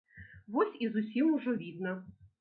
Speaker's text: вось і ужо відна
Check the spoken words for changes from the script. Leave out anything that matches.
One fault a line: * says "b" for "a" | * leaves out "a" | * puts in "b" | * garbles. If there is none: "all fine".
* puts in "зусім"